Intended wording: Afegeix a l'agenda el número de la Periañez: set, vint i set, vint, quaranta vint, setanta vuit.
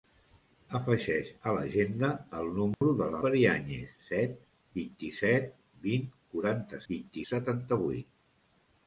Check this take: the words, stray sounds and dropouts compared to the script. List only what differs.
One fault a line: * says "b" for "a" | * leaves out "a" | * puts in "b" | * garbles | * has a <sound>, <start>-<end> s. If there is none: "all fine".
* has a dropout, 2.7-2.8 s